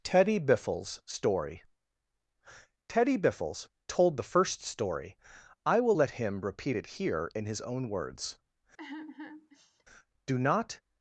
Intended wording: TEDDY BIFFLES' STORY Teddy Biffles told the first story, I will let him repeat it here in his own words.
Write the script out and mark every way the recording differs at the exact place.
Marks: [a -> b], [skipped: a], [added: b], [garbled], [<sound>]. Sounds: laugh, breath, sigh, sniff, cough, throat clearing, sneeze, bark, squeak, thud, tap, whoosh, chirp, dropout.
TEDDY BIFFLES' STORY Teddy Biffles told the first story, I will let him repeat it here in his own words. [sigh] [added: Do not]